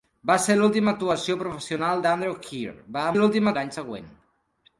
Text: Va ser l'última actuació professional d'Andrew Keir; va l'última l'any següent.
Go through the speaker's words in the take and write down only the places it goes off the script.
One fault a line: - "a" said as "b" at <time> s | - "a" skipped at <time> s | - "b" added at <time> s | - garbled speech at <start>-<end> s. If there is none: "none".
none